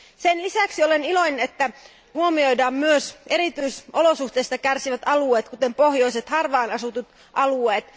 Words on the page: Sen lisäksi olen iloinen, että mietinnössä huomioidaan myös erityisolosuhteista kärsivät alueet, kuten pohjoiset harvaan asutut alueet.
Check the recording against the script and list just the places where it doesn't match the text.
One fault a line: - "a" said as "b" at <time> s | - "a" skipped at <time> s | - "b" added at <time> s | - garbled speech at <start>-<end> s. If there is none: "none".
- "että mietinnössä" skipped at 1.5 s